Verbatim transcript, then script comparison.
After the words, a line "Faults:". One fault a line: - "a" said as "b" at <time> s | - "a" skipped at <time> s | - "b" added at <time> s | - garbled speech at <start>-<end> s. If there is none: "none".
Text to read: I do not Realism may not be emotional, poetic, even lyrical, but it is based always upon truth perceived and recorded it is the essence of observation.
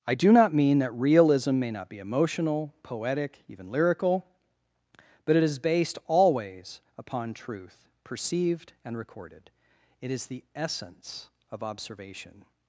I do not mean that Realism may not be emotional, poetic, even lyrical, but it is based always upon truth perceived and recorded it is the essence of observation.
Faults:
- "mean that" added at 0.5 s